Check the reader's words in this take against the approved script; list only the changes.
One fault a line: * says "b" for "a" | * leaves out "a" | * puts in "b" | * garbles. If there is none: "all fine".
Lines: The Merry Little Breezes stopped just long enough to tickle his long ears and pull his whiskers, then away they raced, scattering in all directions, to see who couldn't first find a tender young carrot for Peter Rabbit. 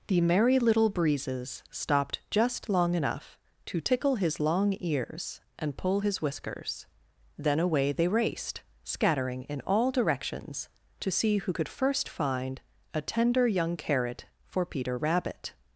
* says "could" for "couldn't"